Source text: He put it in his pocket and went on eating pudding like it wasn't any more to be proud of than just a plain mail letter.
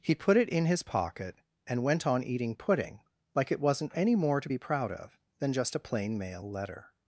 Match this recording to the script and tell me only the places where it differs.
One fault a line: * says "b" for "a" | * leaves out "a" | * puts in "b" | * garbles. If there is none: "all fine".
all fine